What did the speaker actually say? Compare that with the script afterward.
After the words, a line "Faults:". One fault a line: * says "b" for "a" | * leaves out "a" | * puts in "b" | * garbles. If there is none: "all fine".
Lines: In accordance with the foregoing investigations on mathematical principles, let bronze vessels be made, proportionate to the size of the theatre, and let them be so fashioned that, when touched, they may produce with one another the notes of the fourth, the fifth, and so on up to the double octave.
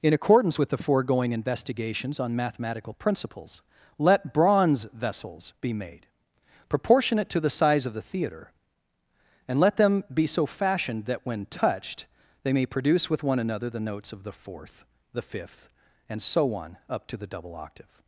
In accordance with the foregoing investigations on mathematical principles, let bronze vessels be made, proportionate to the size of the theatre, and let them be so fashioned that, when touched, they may produce with one another the notes of the fourth, the fifth, and so on up to the double octave.
Faults:
all fine